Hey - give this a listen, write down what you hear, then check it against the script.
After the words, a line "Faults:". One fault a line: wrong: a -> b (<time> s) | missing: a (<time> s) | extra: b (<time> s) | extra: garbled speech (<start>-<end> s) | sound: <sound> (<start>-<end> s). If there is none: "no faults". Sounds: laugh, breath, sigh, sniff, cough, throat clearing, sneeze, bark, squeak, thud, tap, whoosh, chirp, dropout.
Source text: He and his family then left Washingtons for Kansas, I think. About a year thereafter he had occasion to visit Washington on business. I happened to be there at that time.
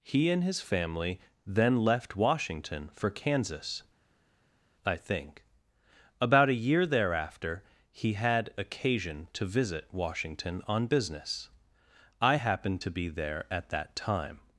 He and his family then left Washington for Kansas, I think. About a year thereafter he had occasion to visit Washington on business. I happened to be there at that time.
Faults:
wrong: Washingtons -> Washington (2.1 s)